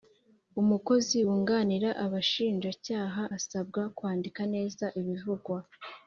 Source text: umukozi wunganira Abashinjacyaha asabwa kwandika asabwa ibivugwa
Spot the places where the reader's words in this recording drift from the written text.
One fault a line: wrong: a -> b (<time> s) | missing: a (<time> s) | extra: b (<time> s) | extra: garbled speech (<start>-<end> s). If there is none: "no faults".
wrong: asabwa -> neza (4.5 s)